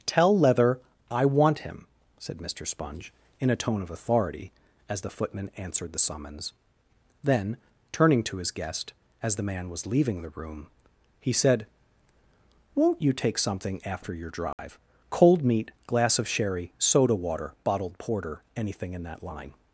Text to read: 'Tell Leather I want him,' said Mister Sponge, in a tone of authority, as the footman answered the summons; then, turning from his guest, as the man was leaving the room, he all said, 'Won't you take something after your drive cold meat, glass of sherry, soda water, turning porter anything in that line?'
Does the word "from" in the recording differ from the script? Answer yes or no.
yes